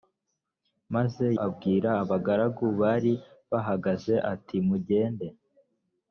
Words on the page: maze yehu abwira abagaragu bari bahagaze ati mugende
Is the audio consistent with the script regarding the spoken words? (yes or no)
no